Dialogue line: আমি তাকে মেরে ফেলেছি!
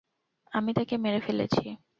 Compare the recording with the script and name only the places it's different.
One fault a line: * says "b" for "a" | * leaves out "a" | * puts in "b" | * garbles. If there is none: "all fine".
all fine